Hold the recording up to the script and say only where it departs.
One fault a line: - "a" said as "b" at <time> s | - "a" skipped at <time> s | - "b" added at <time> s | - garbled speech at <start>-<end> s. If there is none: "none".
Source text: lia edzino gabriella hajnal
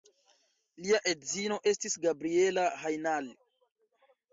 - "estis" added at 1.7 s